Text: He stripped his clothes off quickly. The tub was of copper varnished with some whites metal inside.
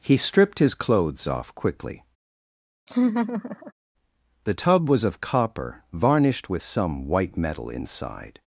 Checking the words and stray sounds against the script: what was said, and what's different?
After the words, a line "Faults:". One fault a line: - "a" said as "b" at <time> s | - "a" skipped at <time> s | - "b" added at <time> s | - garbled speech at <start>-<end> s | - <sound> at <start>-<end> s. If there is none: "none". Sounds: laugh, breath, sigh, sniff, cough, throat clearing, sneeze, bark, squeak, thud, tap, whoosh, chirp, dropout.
He stripped his clothes off quickly. The tub was of copper varnished with some white metal inside.
Faults:
- laugh at 2.9-3.7 s
- "whites" said as "white" at 7.1 s